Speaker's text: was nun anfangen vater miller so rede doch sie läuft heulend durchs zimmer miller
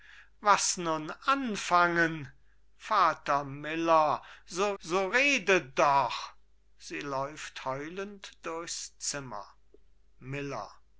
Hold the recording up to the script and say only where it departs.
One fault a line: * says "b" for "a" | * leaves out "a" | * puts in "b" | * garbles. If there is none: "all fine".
* puts in "so"